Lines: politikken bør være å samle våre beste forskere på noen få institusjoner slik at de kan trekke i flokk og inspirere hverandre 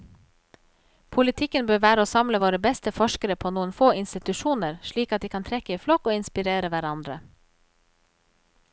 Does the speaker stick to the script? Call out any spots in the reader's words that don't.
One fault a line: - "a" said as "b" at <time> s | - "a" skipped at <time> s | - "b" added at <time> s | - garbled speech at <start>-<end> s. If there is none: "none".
none